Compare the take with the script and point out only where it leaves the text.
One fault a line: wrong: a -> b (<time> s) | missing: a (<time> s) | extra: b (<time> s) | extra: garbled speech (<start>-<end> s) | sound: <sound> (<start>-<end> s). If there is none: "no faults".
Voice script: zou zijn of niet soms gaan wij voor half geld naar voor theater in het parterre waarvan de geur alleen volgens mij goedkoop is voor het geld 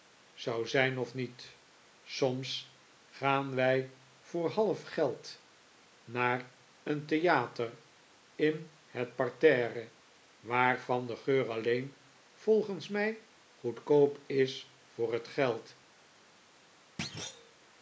wrong: voor -> een (6.8 s)
sound: thud (17.0-17.6 s)